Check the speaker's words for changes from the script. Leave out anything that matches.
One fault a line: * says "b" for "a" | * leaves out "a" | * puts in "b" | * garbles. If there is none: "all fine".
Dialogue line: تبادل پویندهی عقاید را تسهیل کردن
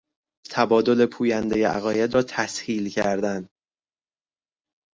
all fine